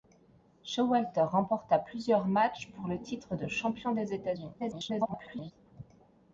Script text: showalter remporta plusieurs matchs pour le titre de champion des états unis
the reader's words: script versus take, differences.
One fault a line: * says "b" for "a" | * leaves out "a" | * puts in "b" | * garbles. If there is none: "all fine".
* garbles